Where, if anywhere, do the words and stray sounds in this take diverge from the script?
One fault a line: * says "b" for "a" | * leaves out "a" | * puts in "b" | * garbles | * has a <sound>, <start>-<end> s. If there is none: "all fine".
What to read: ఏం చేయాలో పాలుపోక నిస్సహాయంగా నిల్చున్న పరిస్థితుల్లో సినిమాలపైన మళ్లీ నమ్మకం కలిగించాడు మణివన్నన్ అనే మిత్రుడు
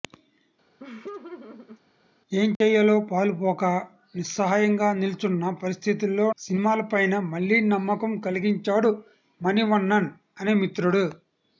* has a laugh, 0.8-1.8 s
* has a dropout, 2.6-2.6 s